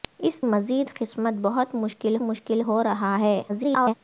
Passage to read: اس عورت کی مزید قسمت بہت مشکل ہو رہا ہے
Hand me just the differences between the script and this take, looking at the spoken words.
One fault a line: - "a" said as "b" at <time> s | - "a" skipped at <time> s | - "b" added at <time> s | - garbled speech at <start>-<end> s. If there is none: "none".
- "عورت کی" skipped at 0.4 s
- "مشکل" added at 2.2 s
- garbled speech at 3.5-3.9 s